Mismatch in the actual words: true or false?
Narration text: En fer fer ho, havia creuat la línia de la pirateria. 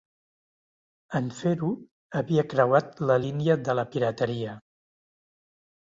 true